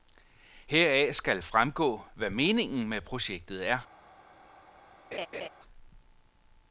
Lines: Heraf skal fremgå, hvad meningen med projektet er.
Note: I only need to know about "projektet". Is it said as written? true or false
true